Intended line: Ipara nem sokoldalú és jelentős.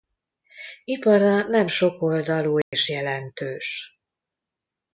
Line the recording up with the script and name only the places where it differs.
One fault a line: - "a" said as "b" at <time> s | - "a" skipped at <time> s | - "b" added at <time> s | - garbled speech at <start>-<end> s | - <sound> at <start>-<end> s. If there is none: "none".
- dropout at 2.6-2.7 s